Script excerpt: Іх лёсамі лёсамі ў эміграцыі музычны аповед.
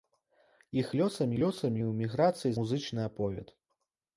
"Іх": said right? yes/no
yes